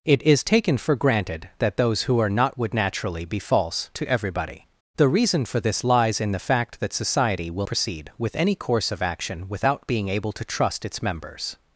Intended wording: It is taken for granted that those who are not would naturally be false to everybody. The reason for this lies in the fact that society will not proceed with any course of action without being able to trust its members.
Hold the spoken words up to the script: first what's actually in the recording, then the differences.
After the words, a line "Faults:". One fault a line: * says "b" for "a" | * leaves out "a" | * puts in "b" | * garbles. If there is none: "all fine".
It is taken for granted that those who are not would naturally be false to everybody. The reason for this lies in the fact that society will proceed with any course of action without being able to trust its members.
Faults:
* leaves out "not"